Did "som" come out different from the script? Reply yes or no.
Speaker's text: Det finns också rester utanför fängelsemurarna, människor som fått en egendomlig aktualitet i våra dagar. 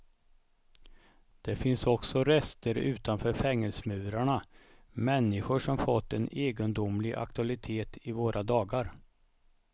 no